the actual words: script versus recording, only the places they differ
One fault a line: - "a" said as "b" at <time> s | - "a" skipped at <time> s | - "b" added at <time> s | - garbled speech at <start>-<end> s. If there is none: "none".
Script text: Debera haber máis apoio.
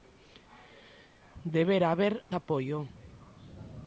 - "máis" skipped at 2.1 s